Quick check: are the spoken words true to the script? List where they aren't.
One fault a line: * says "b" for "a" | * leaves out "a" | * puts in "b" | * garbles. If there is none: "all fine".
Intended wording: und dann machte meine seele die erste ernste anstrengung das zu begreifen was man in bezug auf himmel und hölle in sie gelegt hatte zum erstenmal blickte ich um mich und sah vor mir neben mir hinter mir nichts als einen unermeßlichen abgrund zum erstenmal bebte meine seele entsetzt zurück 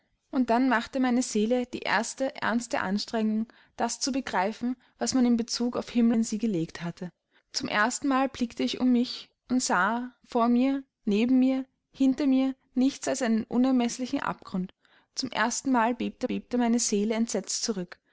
* leaves out "und hölle"
* puts in "bebte"